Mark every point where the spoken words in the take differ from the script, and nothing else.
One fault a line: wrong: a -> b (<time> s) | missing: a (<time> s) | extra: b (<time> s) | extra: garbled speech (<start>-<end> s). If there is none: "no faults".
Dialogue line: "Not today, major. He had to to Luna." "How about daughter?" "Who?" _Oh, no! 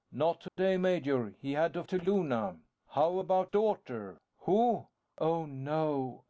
no faults